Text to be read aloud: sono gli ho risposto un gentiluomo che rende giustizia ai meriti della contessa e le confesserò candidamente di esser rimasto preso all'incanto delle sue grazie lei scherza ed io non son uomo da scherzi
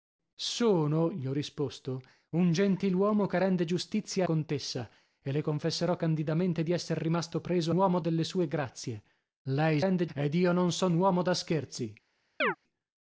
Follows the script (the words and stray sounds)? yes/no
no